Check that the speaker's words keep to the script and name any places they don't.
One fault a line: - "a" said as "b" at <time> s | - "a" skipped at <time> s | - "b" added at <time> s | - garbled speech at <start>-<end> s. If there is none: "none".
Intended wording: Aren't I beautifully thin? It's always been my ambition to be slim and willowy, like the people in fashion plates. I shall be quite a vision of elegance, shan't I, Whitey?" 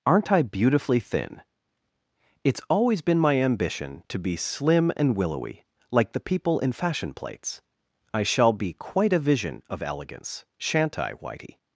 none